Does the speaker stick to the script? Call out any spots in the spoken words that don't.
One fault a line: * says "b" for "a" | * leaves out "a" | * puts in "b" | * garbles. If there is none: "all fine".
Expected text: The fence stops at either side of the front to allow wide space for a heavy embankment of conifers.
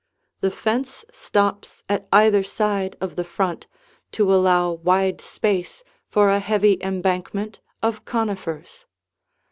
all fine